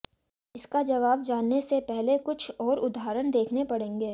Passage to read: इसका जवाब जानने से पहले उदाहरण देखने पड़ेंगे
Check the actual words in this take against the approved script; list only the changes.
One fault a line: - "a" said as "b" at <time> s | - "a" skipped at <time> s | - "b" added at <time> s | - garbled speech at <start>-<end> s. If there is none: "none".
- "कुछ और" added at 2.2 s